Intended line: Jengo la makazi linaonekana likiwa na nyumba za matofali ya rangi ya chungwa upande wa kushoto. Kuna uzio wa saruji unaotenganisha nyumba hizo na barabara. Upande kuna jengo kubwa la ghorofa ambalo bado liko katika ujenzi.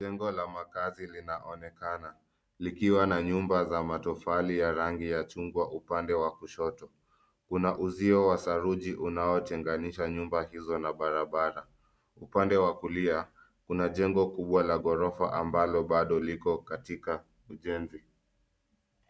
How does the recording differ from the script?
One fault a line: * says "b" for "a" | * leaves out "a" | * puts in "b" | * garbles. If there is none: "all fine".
* puts in "wa kulia"